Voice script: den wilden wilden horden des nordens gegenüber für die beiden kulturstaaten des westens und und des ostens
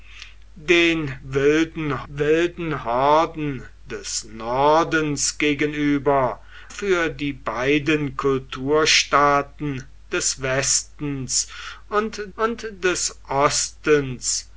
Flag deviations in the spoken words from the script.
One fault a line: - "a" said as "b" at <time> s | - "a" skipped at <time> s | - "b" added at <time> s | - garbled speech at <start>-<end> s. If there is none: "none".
none